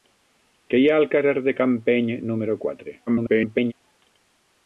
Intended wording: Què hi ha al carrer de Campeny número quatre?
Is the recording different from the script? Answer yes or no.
yes